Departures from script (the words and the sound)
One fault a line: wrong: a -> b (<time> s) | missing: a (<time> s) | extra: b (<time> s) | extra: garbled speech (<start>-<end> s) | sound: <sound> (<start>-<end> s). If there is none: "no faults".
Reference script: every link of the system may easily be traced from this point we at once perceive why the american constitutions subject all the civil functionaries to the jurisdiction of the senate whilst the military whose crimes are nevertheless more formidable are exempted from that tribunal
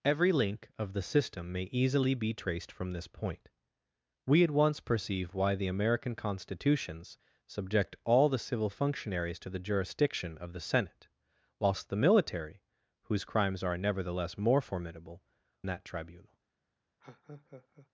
missing: are exempted from (15.2 s)
sound: laugh (17.0-17.9 s)